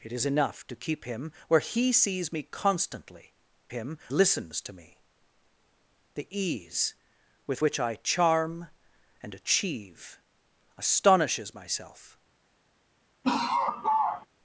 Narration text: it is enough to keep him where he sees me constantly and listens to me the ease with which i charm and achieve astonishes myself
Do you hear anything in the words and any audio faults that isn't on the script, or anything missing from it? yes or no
yes